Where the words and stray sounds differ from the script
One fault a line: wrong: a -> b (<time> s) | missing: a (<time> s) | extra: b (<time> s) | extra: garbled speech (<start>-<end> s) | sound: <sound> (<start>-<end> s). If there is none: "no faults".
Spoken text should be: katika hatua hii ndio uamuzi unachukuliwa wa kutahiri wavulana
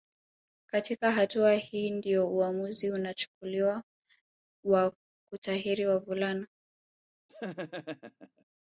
sound: laugh (7.3-8.4 s)